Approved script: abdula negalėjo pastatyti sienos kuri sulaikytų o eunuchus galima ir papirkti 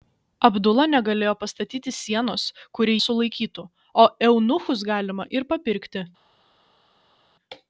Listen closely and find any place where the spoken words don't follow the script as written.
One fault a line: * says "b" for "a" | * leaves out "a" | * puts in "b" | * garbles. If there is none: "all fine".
all fine